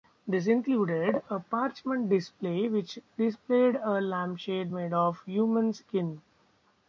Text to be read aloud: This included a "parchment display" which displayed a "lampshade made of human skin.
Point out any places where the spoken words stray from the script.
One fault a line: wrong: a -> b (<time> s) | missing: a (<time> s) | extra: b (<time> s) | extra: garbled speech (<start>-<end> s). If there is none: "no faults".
no faults